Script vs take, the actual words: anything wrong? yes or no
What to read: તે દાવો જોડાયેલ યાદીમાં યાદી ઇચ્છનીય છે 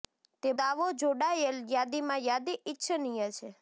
no